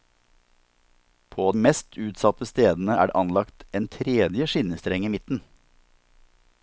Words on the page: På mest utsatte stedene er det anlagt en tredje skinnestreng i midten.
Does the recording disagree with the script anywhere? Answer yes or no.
no